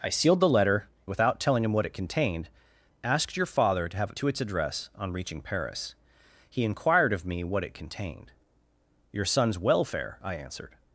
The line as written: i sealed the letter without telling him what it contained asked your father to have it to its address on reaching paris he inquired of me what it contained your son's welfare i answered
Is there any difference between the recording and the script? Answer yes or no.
no